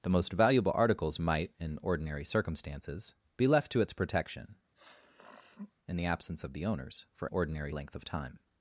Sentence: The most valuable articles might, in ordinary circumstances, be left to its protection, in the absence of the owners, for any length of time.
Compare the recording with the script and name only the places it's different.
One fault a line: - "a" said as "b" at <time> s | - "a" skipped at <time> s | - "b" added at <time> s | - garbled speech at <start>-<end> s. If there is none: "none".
- "any" said as "ordinary" at 7.3 s